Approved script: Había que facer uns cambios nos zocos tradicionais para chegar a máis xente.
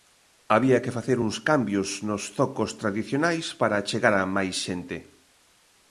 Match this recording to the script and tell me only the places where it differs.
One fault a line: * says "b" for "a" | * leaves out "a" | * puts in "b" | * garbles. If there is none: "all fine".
all fine